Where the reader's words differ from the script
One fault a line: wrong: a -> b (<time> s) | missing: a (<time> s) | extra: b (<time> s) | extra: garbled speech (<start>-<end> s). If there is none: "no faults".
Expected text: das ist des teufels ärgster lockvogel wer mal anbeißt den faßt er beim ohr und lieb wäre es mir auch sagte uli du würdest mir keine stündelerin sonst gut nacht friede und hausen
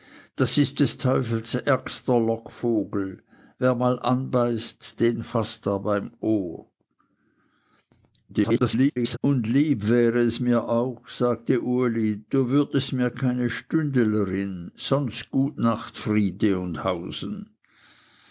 extra: garbled speech (8.3-9.2 s)